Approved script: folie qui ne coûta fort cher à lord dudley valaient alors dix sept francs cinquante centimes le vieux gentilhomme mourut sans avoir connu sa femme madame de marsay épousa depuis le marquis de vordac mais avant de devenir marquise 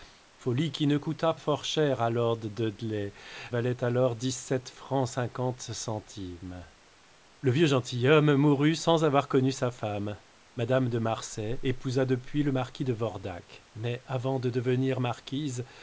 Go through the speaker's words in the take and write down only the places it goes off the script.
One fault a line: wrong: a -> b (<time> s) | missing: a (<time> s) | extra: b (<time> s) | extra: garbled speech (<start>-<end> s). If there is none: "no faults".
no faults